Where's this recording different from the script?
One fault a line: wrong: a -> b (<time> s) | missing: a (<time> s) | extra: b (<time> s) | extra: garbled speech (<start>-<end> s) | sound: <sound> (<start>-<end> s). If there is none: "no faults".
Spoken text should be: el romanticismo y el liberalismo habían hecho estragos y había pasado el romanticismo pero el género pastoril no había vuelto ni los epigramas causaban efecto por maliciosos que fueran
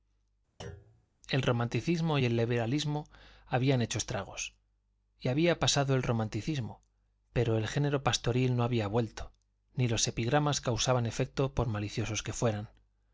sound: thud (0.6-1.1 s)